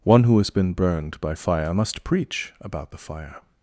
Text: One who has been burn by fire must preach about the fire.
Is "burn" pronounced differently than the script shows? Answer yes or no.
yes